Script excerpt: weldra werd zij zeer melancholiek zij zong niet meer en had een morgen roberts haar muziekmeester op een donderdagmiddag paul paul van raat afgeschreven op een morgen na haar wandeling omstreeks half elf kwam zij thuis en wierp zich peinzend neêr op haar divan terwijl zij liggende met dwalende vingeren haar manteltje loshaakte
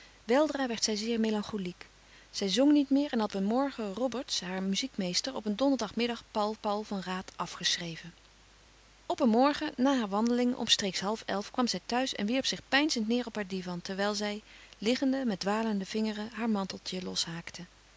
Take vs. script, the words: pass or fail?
pass